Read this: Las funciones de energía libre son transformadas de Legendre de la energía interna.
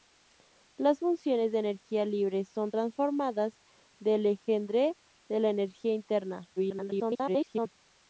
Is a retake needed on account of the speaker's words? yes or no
yes